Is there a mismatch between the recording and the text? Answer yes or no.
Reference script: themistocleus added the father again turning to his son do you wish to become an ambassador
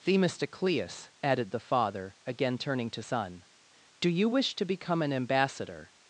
yes